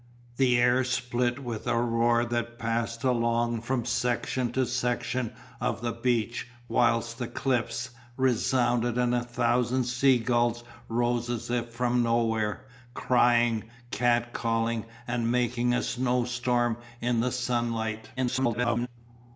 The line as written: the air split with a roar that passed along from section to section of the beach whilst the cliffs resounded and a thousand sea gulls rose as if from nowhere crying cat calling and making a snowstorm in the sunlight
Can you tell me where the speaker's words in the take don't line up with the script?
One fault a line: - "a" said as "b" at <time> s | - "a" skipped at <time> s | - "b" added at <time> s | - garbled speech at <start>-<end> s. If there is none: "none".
- garbled speech at 18.2-18.9 s